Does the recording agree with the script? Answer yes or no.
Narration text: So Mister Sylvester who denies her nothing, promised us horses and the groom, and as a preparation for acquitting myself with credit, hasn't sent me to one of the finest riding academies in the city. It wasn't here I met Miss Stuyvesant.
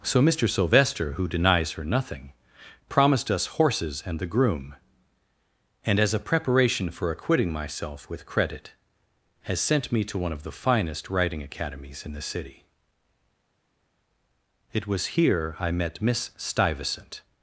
no